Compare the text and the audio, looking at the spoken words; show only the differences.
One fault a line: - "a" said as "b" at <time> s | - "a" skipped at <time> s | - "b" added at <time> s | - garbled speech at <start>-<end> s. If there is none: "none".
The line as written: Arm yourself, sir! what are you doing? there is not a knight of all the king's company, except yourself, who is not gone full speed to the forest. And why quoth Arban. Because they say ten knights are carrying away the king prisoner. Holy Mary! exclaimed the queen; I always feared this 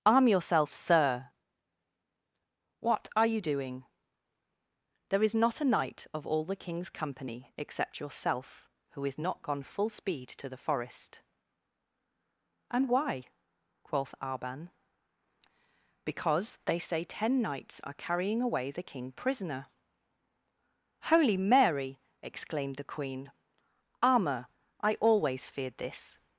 - "armour" added at 24.0 s